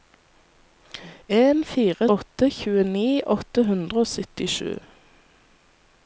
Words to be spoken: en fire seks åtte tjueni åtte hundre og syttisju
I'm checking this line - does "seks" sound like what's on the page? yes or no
no